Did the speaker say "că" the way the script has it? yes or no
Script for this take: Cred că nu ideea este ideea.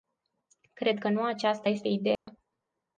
yes